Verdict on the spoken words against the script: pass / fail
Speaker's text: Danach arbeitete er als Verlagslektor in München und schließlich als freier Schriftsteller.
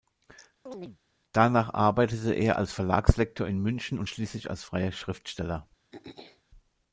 pass